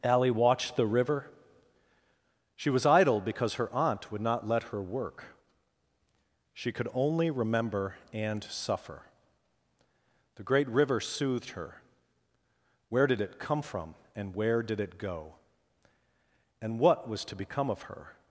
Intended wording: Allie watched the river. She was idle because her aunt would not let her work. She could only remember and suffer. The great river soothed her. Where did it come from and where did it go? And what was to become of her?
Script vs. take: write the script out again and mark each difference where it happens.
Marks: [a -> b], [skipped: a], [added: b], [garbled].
Allie watched the river. She was idle because her aunt would not let her work. She could only remember and suffer. The great river soothed her. Where did it come from and where did it go? And what was to become of her?